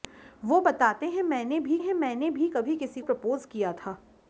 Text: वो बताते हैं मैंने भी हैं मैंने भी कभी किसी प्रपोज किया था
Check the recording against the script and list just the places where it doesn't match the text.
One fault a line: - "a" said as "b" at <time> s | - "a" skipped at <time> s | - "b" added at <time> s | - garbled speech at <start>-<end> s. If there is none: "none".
none